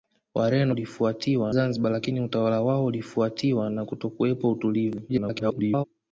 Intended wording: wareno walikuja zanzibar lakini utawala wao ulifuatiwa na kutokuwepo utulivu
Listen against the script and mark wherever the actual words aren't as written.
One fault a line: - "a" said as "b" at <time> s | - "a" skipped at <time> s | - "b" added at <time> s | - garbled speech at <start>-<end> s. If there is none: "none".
- "walikuja" said as "ulifuatiwa" at 0.7 s
- garbled speech at 5.1-5.8 s